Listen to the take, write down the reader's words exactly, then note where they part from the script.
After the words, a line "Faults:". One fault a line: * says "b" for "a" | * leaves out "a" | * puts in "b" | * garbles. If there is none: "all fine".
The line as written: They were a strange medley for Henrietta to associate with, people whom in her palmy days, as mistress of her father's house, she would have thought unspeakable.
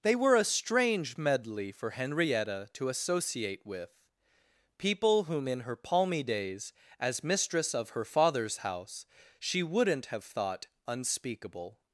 They were a strange medley for Henrietta to associate with, people whom in her palmy days, as mistress of her father's house, she wouldn't have thought unspeakable.
Faults:
* says "wouldn't" for "would"